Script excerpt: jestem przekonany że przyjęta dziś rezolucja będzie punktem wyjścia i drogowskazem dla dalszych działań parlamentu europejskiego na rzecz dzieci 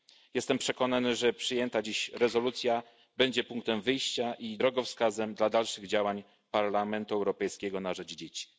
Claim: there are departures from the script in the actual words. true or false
false